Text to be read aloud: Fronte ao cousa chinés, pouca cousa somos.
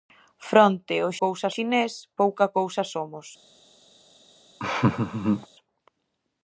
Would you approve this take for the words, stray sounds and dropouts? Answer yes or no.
no